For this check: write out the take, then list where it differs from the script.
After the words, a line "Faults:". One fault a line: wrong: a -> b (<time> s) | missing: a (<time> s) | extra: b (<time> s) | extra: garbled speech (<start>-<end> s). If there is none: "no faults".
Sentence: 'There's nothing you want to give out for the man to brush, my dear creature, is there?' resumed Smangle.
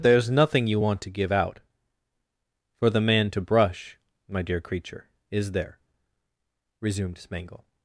'There's nothing you want to give out for the man to brush, my dear creature, is there?' resumed Smangle.
Faults:
no faults